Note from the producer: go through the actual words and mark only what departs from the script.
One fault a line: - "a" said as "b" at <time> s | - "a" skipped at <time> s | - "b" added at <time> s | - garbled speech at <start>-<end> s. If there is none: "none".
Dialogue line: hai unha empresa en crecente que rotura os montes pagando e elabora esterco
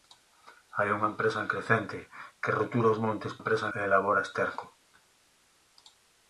- "pagando" said as "empresa" at 3.4 s